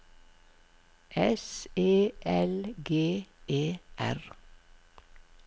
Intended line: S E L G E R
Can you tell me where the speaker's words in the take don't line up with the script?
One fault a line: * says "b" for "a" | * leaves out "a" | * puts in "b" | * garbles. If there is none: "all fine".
all fine